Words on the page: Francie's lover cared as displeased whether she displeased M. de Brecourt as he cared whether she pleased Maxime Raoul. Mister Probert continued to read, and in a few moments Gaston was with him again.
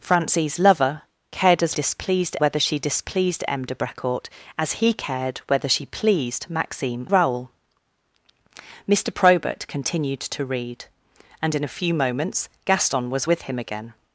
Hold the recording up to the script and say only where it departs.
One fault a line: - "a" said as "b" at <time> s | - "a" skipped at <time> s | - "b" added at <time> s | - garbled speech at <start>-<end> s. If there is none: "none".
none